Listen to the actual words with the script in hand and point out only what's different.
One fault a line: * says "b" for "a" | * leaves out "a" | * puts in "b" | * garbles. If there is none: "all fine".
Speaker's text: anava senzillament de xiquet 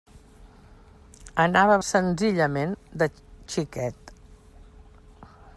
all fine